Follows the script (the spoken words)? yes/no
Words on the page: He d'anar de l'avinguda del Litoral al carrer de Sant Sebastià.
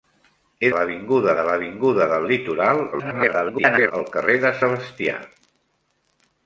no